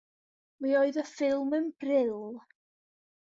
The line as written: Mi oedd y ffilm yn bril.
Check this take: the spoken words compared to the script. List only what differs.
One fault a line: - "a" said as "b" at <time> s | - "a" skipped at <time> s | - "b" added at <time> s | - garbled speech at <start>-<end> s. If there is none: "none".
none